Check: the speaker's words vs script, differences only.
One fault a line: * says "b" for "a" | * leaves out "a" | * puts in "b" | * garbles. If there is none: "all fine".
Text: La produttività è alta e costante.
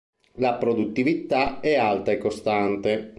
all fine